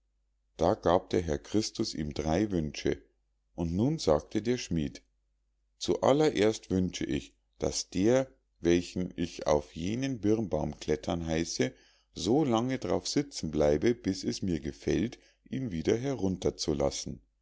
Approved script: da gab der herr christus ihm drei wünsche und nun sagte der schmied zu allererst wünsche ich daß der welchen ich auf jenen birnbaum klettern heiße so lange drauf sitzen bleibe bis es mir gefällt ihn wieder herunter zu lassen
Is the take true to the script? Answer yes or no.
yes